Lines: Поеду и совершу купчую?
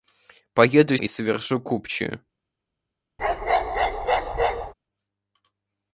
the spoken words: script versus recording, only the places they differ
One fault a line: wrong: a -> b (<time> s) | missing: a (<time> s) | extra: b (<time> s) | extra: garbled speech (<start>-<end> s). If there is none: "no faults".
no faults